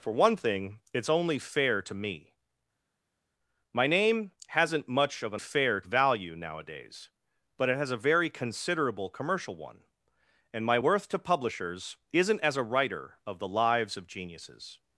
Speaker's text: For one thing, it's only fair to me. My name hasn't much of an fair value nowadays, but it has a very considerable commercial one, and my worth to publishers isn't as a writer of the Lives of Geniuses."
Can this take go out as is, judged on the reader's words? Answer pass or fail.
pass